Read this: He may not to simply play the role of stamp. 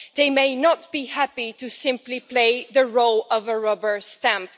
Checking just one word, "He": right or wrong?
wrong